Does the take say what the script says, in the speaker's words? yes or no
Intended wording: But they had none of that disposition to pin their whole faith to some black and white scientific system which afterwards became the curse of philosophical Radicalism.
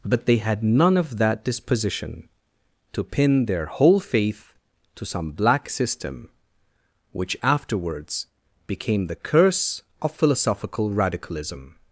no